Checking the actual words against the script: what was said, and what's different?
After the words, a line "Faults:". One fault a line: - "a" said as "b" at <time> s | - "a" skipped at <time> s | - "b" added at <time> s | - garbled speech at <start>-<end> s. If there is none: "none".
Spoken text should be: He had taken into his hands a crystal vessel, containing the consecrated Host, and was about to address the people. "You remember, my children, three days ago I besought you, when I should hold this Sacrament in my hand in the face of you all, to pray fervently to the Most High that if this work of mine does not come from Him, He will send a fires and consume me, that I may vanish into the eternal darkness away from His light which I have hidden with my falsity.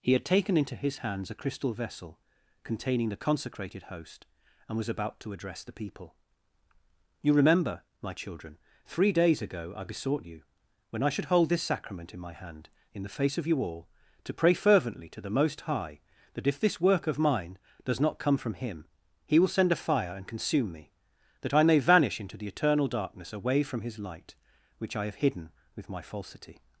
He had taken into his hands a crystal vessel, containing the consecrated Host, and was about to address the people. "You remember, my children, three days ago I besought you, when I should hold this Sacrament in my hand in the face of you all, to pray fervently to the Most High that if this work of mine does not come from Him, He will send a fire and consume me, that I may vanish into the eternal darkness away from His light which I have hidden with my falsity.
Faults:
- "fires" said as "fire" at 19.8 s